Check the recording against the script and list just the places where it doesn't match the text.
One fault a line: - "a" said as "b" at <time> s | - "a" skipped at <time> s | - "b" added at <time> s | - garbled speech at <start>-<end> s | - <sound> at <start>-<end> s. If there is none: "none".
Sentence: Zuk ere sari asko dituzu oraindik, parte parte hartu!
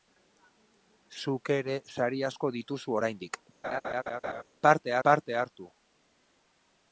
- laugh at 3.6-4.4 s